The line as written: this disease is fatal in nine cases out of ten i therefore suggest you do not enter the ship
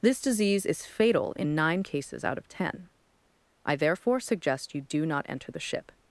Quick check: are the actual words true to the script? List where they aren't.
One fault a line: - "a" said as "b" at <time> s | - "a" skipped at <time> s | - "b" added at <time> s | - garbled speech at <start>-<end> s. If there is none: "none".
none